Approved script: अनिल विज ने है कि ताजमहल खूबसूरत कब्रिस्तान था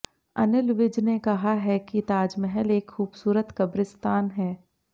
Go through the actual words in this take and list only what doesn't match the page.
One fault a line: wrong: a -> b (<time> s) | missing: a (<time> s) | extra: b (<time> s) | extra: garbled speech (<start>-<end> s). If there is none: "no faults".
extra: कहा (1.2 s)
extra: एक (2.7 s)
wrong: था -> है (4.3 s)